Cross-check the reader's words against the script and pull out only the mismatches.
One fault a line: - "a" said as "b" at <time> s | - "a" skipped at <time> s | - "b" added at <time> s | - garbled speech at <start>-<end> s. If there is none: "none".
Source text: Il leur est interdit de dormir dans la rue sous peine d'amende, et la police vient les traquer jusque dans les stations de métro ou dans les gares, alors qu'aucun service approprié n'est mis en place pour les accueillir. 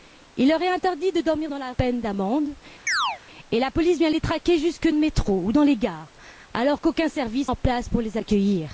- "rue sous" skipped at 1.7 s
- "dans les stations" skipped at 4.9 s
- "approprié n'est mis" skipped at 7.5 s